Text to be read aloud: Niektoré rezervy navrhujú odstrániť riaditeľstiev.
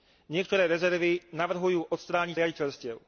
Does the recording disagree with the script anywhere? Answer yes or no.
no